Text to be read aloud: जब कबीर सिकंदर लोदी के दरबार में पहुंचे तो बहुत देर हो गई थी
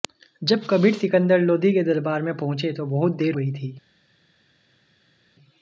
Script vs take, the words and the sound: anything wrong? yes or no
yes